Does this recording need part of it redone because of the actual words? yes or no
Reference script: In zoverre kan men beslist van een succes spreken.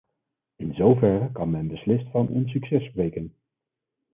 no